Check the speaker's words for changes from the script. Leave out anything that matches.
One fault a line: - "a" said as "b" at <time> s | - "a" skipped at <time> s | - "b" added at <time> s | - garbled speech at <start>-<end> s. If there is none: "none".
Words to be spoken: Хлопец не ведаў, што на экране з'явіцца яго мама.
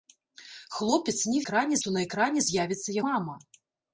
- "ведаў" said as "экране" at 1.4 s
- "яго" skipped at 3.0 s